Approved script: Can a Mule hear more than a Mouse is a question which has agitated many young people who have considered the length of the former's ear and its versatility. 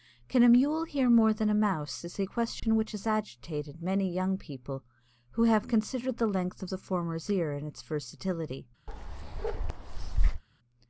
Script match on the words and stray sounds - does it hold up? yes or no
no